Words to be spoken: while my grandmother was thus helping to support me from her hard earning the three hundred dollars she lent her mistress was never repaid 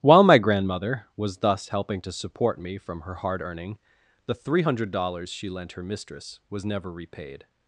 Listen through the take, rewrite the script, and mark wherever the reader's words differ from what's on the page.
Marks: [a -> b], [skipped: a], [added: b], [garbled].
while my grandmother was thus helping to support me from her hard earning the three hundred dollars she lent her mistress was never repaid